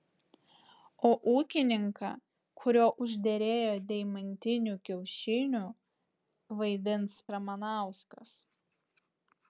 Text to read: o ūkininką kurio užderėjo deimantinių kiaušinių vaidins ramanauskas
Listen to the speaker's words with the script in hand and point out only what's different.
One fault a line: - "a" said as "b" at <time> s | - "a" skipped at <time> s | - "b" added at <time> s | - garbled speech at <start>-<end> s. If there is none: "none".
none